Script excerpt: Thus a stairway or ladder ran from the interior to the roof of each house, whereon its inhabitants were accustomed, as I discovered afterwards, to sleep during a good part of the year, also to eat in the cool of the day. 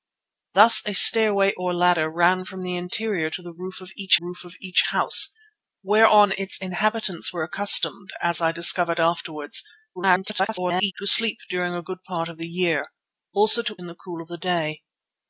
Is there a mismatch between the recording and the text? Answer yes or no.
yes